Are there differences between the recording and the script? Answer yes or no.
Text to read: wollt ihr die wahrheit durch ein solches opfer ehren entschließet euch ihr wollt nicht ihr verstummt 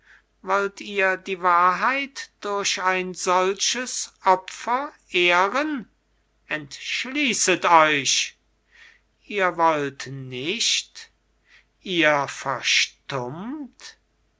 no